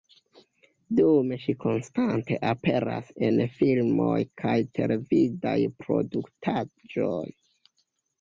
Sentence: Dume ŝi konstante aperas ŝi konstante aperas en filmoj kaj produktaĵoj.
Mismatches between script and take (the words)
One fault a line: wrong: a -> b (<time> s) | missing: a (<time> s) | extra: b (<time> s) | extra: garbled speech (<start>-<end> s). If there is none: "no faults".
missing: ŝi konstante aperas (3.1 s)
extra: televidaj (4.8 s)